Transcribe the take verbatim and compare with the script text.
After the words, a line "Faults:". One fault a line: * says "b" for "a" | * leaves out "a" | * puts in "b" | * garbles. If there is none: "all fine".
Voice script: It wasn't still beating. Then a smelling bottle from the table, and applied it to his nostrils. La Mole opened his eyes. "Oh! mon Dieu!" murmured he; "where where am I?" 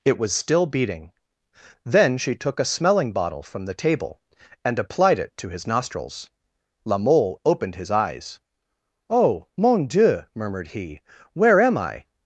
It was still beating. Then she took a smelling bottle from the table, and applied it to his nostrils. La Mole opened his eyes. "Oh! mon Dieu!" murmured he; "where am I?"
Faults:
* says "was" for "wasn't"
* puts in "she took"
* leaves out "where"